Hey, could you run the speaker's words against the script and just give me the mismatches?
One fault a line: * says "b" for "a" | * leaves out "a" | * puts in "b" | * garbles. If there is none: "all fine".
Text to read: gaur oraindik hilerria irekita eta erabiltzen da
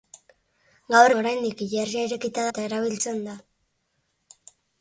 all fine